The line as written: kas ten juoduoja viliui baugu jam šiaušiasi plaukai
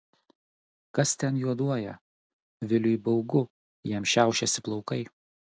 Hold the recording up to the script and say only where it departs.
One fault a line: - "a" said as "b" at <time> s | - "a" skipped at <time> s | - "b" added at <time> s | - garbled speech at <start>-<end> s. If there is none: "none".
none